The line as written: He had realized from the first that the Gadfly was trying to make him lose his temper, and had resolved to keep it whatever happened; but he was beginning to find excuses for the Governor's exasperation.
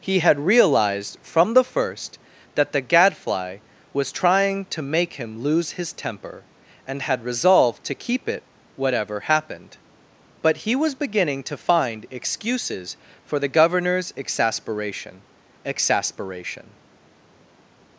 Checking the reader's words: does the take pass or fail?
fail